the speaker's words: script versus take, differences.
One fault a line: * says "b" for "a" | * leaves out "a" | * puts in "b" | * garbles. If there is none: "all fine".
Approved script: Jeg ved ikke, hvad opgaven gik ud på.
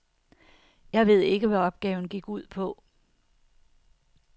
all fine